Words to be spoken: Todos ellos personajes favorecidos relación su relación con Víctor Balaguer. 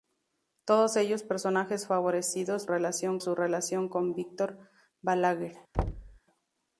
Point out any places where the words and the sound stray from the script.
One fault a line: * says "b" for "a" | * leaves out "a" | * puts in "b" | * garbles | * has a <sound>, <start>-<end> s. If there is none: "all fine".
* has a thud, 5.7-6.2 s